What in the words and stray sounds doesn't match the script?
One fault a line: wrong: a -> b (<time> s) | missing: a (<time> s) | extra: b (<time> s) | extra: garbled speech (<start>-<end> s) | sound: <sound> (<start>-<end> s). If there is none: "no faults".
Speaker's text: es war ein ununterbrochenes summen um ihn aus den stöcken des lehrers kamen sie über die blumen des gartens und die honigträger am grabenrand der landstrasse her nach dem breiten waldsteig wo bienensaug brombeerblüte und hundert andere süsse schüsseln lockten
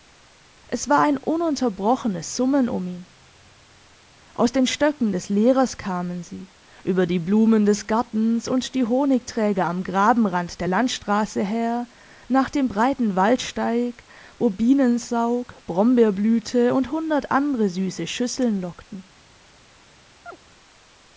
sound: chirp (20.3-20.4 s)